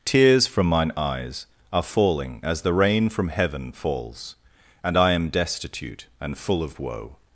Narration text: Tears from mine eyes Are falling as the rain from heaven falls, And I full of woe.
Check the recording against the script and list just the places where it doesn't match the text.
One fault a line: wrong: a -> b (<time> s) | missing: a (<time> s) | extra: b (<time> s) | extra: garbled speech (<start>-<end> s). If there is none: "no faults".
extra: am destitute and (5.1 s)